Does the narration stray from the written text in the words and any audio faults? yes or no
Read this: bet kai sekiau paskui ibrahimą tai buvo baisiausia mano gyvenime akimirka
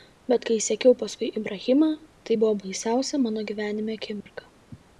yes